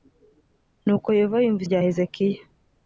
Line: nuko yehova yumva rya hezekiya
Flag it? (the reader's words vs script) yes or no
no